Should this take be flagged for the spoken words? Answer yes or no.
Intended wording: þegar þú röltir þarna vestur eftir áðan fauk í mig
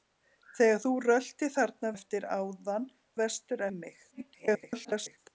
yes